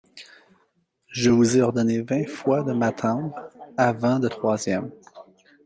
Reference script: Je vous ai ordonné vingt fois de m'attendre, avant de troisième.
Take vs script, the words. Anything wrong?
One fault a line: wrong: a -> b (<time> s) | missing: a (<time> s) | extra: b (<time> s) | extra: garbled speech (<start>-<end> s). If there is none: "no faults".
no faults